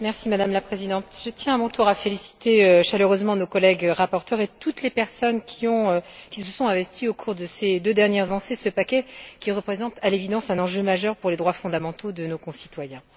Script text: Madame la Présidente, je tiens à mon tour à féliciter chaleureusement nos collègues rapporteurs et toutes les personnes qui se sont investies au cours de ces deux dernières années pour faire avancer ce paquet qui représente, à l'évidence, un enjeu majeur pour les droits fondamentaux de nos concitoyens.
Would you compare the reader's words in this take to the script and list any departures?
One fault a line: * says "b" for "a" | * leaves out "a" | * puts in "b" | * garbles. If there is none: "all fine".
* leaves out "années pour faire"